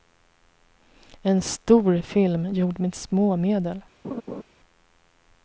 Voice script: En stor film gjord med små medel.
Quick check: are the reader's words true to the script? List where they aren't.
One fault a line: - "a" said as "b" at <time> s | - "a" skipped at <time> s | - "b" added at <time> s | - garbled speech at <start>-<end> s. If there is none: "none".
none